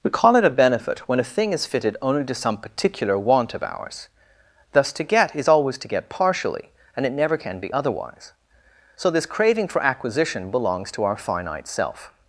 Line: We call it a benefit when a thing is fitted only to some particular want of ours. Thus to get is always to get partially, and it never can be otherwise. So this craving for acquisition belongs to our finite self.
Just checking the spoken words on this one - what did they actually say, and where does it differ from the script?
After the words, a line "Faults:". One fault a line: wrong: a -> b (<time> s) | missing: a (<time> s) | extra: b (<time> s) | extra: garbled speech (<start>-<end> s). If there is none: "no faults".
We call it a benefit when a thing is fitted only to some particular want of ours. Thus to get is always to get partially, and it never can be otherwise. So this craving for acquisition belongs to our finite self.
Faults:
no faults